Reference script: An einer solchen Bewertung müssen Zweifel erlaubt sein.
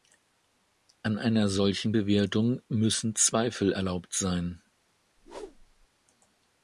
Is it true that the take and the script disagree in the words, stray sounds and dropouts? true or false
true